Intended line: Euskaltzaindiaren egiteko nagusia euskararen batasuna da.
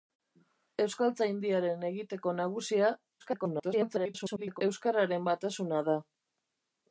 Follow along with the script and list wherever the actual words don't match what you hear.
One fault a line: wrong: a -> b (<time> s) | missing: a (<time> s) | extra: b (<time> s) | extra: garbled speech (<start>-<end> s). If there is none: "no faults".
extra: garbled speech (3.2-4.6 s)